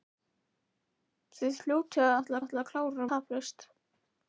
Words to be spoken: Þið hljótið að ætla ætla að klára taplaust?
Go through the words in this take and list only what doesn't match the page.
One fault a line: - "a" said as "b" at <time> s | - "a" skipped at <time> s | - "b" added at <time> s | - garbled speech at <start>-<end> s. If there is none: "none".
none